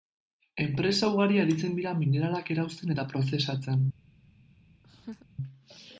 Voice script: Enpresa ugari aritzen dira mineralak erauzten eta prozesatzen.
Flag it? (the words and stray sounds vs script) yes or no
yes